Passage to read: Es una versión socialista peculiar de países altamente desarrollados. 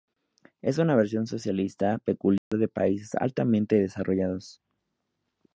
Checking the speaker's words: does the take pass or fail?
pass